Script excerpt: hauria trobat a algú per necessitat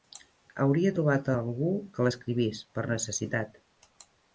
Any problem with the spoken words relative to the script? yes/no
yes